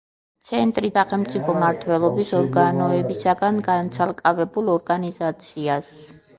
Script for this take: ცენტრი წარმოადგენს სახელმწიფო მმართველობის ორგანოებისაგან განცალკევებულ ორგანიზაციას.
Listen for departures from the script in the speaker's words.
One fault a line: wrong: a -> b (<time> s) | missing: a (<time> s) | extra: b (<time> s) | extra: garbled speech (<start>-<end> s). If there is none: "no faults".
missing: წარმოადგენს (0.9 s)